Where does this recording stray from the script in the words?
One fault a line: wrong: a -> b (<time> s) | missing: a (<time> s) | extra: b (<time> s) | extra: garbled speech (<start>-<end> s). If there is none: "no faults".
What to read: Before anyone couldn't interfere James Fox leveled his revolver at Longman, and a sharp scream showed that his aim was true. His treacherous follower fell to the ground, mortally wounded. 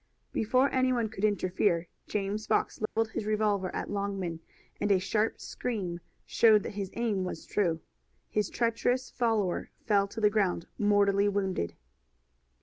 wrong: couldn't -> could (1.1 s)